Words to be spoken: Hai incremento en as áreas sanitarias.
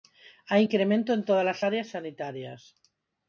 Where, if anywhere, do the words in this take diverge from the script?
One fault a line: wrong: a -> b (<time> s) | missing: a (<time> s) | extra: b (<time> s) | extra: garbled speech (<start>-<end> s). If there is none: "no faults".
extra: todas (1.3 s)